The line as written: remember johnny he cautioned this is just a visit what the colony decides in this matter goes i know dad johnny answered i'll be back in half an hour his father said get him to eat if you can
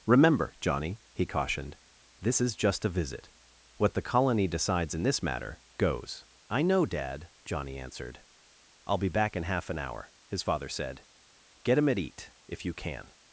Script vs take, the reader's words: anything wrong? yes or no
yes